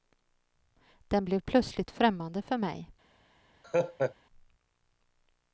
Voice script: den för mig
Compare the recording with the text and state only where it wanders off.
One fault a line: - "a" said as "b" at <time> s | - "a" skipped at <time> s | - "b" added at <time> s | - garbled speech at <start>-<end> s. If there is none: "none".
- "blev plötsligt främmande" added at 1.2 s